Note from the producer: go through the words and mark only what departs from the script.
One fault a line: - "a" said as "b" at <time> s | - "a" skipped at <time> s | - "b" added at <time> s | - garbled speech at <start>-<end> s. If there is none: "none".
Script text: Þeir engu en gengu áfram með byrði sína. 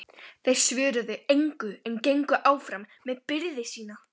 - "svöruðu" added at 0.6 s